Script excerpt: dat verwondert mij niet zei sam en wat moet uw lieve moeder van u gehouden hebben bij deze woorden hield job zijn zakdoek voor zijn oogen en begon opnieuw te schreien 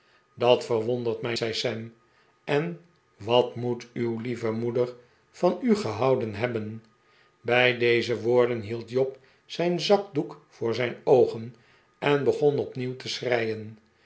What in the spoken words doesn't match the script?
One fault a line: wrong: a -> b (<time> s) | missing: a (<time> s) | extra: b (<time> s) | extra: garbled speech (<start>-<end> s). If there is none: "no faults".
missing: niet (1.4 s)